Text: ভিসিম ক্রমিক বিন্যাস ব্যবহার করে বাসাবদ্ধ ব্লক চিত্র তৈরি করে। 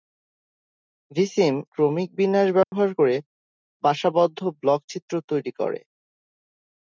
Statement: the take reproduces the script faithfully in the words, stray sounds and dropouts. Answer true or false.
false